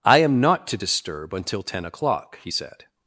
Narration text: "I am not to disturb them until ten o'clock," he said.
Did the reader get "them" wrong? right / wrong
wrong